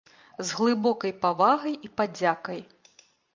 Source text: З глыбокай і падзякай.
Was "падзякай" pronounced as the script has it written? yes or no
yes